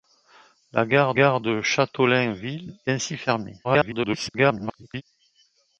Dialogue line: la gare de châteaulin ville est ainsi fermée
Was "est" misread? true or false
true